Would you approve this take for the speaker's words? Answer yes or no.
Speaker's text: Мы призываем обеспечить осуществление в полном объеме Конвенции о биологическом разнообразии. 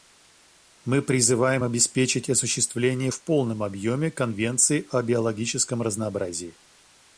yes